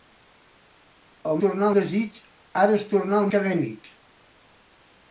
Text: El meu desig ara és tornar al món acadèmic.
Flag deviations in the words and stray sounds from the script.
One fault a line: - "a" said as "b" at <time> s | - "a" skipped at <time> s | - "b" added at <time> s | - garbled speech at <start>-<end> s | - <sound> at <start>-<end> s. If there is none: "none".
- "meu" said as "tornar" at 1.4 s
- "món" skipped at 3.3 s